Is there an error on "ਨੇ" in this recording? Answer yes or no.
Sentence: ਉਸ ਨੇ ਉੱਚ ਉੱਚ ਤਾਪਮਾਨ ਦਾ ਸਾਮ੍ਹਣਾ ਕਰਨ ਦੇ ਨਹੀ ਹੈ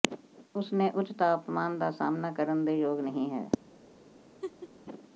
no